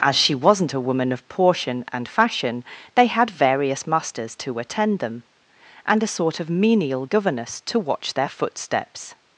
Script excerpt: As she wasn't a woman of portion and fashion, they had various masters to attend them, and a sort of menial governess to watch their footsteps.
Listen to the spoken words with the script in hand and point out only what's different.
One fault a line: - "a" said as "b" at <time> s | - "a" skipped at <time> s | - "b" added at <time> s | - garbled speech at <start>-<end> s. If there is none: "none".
none